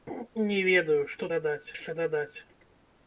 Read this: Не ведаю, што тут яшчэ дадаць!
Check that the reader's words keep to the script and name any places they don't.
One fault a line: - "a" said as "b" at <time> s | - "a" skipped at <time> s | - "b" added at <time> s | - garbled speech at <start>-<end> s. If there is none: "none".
- "тут" said as "дадаць" at 1.4 s